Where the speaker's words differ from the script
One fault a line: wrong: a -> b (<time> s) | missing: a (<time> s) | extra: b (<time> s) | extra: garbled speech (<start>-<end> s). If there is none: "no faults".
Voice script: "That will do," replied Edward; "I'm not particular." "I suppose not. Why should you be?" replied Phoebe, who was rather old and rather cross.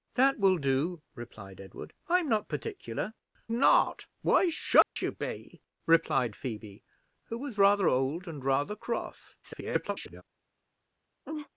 missing: I suppose (3.1 s)
extra: garbled speech (9.4-10.2 s)